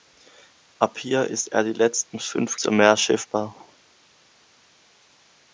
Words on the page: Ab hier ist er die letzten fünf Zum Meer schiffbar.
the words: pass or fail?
pass